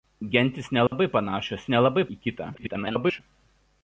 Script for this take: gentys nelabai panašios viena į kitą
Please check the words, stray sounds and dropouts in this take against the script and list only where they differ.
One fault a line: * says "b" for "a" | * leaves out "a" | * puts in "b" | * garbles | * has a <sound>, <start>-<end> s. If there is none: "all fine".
* has a dropout, 0.9-0.9 s
* says "nelabai" for "viena"
* garbles